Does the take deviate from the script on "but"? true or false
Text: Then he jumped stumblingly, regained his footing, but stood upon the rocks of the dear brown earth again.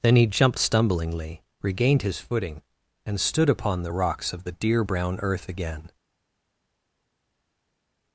true